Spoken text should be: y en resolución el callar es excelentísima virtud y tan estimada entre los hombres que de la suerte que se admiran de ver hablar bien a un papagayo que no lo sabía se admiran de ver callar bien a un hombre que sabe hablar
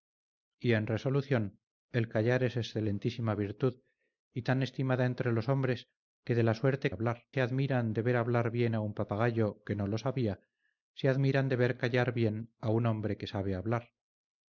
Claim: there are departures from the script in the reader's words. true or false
true